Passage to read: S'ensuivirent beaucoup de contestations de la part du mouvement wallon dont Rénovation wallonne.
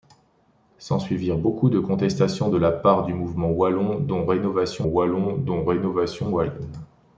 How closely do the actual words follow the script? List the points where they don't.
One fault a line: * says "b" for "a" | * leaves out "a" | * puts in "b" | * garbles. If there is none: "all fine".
* puts in "wallon dont Rénovation"